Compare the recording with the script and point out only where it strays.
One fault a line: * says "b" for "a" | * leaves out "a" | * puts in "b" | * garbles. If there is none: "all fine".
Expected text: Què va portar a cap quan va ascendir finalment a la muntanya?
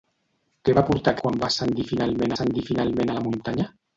* leaves out "cap"
* puts in "ascendir finalment"